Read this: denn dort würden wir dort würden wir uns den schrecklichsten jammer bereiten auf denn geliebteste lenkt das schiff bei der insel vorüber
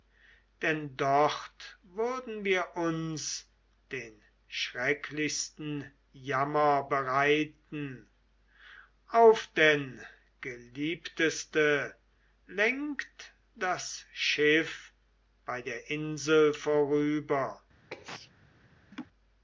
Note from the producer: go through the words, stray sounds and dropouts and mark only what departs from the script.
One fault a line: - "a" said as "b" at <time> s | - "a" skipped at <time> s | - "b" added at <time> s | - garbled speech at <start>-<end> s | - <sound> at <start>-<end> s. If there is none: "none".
- "dort würden wir" skipped at 2.8 s
- sneeze at 17.9-18.3 s
- laugh at 18.9-19.1 s